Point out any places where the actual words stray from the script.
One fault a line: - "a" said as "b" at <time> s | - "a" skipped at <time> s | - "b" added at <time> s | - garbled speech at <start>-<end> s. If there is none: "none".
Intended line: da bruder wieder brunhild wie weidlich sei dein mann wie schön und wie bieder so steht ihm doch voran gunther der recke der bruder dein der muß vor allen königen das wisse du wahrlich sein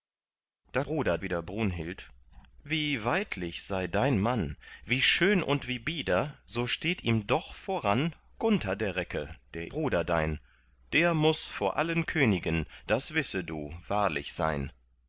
none